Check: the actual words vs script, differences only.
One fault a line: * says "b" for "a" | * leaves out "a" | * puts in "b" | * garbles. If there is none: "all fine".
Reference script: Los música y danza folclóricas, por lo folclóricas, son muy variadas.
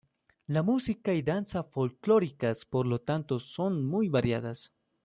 * says "La" for "Los"
* says "tanto" for "folclóricas"